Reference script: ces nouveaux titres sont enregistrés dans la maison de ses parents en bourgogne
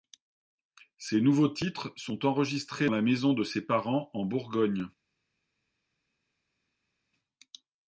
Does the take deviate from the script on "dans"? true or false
true